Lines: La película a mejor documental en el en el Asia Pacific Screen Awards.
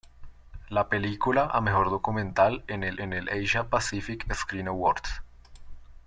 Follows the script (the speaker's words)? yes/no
yes